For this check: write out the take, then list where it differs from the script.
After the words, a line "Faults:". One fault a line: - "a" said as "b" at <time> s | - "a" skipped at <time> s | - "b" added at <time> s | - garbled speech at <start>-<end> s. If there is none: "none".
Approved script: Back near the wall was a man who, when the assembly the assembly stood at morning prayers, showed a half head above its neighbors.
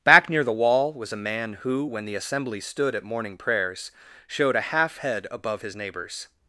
Back near the wall was a man who, when the assembly stood at morning prayers, showed a half head above his neighbors.
Faults:
- "the assembly" skipped at 2.6 s
- "its" said as "his" at 5.6 s